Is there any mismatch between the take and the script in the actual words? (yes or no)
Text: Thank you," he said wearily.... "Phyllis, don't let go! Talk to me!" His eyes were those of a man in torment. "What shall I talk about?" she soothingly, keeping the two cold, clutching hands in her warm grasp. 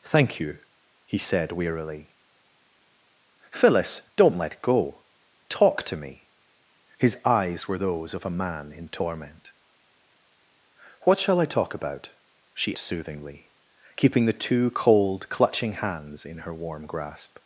no